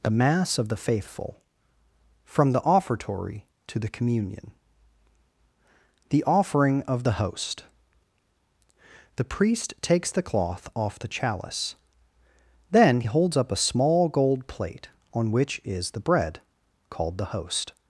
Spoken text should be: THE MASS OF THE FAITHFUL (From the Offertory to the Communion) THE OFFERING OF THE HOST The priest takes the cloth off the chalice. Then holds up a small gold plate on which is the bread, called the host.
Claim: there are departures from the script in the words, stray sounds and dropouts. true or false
false